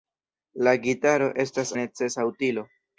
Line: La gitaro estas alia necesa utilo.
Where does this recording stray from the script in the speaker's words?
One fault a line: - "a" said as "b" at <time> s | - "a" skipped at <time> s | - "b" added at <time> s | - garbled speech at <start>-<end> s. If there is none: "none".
- "alia" skipped at 1.7 s